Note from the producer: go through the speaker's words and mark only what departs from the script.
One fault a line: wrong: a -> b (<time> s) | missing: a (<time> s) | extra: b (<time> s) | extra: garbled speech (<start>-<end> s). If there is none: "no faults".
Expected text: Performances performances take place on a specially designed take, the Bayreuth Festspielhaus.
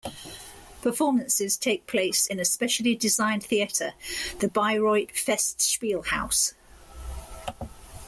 missing: performances (1.6 s)
wrong: on -> in (2.2 s)
wrong: take -> theatre (3.4 s)